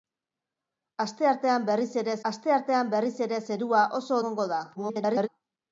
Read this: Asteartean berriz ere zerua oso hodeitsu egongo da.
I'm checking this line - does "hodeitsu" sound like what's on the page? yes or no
no